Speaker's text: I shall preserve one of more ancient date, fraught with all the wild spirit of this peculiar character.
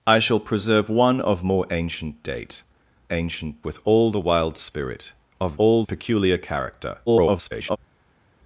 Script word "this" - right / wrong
wrong